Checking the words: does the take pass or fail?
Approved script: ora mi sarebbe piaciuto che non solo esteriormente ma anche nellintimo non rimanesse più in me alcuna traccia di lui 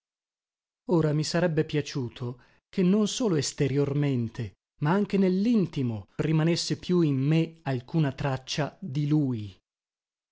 fail